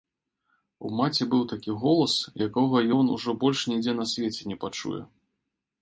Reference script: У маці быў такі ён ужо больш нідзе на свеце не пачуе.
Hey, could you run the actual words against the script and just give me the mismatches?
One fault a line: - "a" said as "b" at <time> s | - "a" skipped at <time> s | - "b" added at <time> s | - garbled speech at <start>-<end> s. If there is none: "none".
- "голас якога" added at 1.9 s